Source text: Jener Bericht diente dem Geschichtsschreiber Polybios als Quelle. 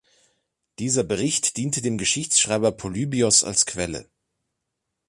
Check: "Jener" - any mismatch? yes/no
yes